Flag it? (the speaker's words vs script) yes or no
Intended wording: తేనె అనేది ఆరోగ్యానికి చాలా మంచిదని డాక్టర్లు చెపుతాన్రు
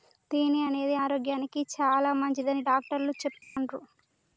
no